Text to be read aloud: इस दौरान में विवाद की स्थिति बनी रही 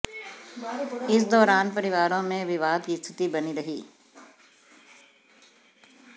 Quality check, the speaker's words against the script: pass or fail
fail